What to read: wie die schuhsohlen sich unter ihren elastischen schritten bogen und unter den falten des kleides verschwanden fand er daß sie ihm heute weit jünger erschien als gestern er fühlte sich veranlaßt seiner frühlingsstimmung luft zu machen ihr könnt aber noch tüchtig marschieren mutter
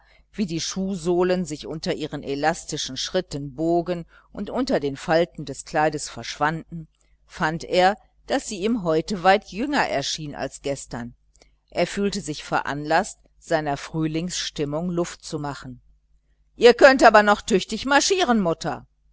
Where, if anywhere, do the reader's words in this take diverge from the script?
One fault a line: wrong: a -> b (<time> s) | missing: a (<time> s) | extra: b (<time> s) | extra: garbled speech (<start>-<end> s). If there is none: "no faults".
no faults